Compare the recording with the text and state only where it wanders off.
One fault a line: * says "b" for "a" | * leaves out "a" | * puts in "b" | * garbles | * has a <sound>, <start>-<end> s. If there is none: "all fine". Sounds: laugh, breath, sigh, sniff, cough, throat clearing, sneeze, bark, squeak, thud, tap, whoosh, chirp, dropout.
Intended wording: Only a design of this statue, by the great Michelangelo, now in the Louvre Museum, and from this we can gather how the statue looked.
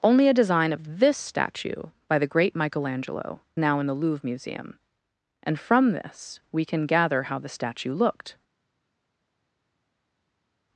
all fine